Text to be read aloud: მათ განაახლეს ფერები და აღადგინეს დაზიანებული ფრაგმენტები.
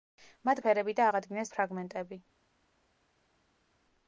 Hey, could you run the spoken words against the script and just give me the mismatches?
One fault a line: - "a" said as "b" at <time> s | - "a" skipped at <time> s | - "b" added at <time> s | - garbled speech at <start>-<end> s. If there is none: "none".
- "განაახლეს" skipped at 0.6 s
- "დაზიანებული" skipped at 1.5 s